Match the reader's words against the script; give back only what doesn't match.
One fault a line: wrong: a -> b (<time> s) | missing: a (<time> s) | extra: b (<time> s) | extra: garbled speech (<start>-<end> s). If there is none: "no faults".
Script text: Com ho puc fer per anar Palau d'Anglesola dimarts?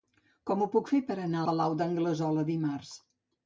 no faults